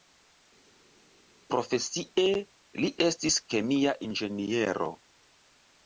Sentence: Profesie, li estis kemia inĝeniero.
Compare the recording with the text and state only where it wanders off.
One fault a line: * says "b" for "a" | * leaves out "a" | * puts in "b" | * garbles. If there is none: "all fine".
all fine